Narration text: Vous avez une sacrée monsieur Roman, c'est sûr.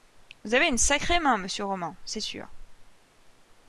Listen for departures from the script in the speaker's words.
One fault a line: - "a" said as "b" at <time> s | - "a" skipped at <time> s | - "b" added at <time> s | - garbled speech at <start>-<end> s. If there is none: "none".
- "main" added at 1.2 s